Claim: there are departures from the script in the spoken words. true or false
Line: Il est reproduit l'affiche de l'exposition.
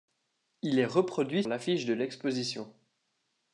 false